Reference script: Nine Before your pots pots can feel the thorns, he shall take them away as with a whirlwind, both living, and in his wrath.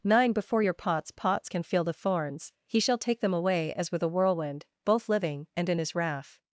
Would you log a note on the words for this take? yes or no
no